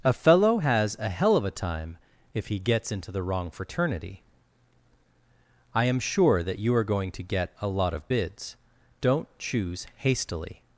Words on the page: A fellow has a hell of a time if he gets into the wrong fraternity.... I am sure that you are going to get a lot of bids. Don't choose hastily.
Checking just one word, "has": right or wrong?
right